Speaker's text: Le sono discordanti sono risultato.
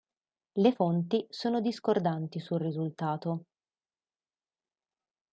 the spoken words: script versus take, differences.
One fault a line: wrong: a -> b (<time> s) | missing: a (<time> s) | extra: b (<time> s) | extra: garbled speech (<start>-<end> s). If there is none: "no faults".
extra: fonti (0.7 s)
wrong: sono -> sul (2.4 s)